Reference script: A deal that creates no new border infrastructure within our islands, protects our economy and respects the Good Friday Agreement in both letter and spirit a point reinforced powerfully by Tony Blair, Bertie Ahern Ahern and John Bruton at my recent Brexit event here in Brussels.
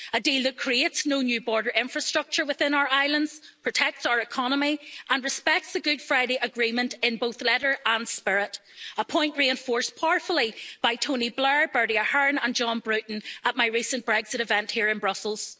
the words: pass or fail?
fail